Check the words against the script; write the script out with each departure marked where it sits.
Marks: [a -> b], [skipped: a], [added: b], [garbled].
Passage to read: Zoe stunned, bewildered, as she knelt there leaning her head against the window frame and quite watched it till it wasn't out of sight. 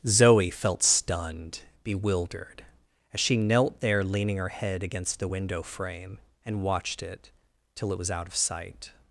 Zoe [added: felt] stunned, bewildered, as she knelt there leaning her head against the window frame and [skipped: quite] watched it till it [wasn't -> was] out of sight.